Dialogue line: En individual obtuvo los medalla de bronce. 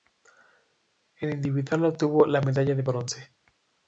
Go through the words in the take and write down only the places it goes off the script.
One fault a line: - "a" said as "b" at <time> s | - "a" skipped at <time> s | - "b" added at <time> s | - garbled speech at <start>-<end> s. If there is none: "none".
- "los" said as "la" at 2.2 s